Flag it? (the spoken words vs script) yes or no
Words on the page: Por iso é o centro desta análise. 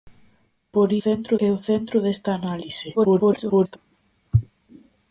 yes